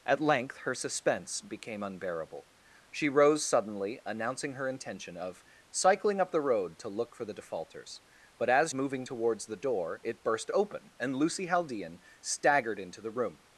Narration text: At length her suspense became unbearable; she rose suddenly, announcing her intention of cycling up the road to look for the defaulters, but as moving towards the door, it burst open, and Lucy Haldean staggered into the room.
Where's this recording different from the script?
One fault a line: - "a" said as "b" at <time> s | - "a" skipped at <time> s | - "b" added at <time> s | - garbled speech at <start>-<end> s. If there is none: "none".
none